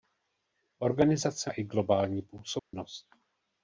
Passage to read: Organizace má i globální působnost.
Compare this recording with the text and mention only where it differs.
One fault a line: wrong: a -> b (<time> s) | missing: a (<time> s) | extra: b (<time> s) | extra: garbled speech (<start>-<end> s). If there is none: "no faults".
missing: má (1.5 s)